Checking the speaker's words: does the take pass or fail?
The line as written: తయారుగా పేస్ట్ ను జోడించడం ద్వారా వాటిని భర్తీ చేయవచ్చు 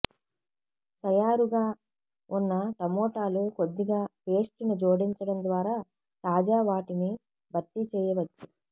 fail